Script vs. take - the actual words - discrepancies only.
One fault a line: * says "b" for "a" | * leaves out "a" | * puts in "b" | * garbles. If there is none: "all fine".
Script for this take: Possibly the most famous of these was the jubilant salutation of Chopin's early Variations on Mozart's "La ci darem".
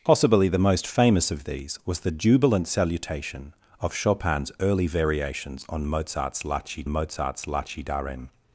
* puts in "Mozart's La ci"